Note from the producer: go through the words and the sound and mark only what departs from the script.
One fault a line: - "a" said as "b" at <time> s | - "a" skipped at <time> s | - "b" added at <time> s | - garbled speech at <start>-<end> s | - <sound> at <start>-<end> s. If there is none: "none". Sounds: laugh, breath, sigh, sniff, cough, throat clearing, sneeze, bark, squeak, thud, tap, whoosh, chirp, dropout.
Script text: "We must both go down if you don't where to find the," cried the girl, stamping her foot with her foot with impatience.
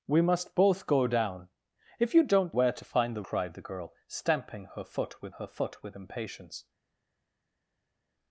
none